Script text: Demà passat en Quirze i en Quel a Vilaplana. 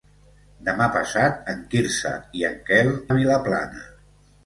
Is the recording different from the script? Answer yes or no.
no